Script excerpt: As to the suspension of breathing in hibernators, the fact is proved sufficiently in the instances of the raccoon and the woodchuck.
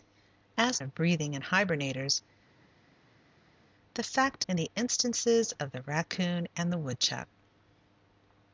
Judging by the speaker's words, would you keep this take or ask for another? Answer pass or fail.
fail